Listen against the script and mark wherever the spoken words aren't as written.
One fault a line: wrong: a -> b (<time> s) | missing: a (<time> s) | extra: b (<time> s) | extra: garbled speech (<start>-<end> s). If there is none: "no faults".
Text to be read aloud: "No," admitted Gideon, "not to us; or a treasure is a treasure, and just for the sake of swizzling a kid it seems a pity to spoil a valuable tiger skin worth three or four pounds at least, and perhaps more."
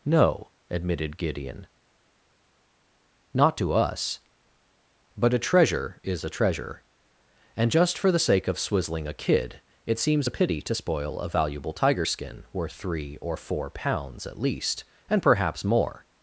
wrong: or -> but (5.2 s)